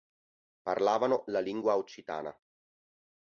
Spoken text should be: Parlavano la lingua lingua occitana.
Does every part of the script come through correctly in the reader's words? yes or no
no